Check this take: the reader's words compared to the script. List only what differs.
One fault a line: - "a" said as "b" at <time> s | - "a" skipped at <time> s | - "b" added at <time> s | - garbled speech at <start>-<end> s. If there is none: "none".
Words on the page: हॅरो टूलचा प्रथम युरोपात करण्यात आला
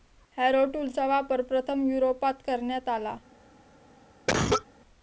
- "वापर" added at 1.1 s